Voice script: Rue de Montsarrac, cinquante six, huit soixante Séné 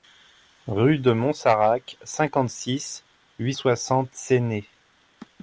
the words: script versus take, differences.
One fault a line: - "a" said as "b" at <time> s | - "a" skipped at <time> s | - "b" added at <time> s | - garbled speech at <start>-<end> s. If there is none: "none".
none